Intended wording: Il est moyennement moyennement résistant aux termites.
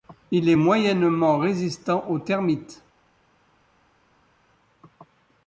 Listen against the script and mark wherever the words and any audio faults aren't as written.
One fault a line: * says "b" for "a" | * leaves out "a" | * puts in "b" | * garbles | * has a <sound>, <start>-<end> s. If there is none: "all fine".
* leaves out "moyennement"